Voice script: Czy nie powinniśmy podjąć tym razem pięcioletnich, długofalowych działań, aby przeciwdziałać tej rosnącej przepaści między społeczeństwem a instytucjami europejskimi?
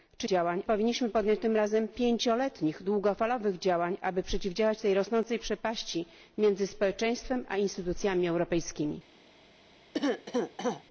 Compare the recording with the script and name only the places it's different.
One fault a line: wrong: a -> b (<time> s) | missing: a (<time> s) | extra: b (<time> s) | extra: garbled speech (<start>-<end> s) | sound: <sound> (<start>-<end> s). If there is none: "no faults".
wrong: nie -> działań (0.2 s)
sound: cough (9.9-10.8 s)